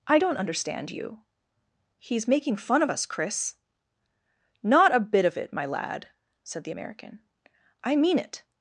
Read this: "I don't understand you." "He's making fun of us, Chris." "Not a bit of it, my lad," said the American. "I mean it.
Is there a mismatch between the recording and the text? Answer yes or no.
no